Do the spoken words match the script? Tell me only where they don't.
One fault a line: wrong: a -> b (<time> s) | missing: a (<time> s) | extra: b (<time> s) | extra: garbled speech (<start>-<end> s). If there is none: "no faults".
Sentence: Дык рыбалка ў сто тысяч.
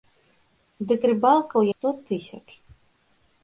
no faults